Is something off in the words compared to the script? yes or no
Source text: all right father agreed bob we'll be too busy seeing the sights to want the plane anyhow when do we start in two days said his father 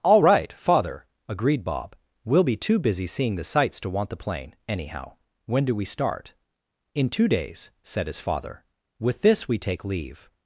yes